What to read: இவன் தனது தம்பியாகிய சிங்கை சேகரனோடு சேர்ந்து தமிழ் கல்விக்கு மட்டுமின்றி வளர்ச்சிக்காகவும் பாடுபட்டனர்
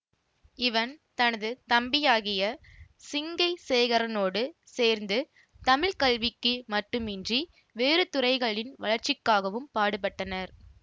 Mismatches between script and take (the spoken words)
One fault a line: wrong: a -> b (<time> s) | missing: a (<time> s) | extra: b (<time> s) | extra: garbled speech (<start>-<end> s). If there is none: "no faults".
extra: வேறு துறைகளின் (7.8 s)